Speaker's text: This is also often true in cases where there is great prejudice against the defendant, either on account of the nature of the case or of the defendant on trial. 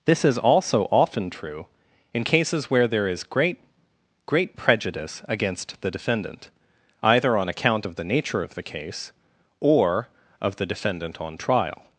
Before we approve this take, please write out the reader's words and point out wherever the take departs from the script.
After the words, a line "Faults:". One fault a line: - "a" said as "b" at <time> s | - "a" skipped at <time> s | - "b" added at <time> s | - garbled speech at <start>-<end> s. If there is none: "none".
This is also often true in cases where there is great great prejudice against the defendant, either on account of the nature of the case or of the defendant on trial.
Faults:
- "great" added at 4.2 s